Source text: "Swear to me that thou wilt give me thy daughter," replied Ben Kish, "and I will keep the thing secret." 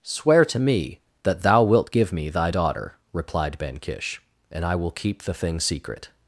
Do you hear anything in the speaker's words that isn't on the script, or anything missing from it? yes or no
no